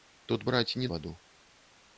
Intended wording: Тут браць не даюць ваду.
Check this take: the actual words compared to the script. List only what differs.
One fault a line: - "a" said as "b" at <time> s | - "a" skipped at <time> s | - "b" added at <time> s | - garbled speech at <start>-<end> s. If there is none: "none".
- "даюць" skipped at 0.9 s